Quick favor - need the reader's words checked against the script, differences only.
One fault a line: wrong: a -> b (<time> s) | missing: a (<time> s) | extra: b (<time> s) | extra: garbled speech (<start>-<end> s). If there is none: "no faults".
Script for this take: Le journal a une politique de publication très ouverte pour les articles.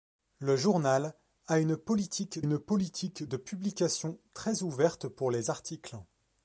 extra: une politique (2.4 s)